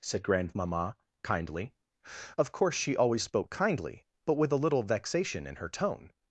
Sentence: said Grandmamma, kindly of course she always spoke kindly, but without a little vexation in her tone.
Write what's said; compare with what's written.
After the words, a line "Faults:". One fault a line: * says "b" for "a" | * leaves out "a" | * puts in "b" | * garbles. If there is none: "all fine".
said Grandmamma, kindly of course she always spoke kindly, but with a little vexation in her tone.
Faults:
* says "with" for "without"